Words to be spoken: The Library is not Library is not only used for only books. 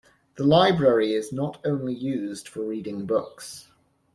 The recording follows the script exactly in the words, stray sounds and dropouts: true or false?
false